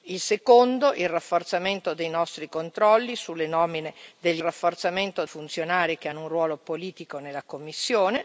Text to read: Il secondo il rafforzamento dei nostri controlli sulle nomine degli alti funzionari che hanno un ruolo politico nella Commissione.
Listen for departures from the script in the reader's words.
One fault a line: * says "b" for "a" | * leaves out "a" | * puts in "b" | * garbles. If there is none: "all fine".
* says "rafforzamento" for "alti"